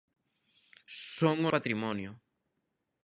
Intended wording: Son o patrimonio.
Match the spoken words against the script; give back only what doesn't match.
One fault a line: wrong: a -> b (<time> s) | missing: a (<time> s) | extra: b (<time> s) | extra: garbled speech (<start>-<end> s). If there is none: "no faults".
no faults